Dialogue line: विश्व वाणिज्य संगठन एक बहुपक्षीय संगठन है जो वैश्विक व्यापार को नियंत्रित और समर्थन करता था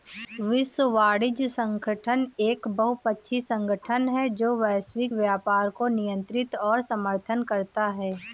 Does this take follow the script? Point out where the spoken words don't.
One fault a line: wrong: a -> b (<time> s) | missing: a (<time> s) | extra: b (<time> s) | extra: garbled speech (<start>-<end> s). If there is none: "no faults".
wrong: था -> है (8.0 s)